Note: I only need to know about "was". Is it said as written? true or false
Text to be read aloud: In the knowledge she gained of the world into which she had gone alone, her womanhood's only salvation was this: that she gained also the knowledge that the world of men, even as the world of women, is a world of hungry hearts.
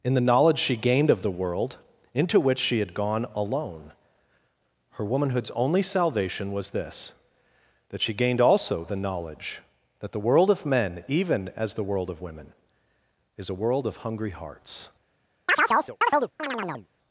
true